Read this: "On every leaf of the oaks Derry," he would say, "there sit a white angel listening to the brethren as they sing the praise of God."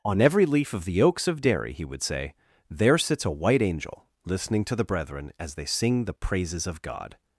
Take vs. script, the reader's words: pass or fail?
fail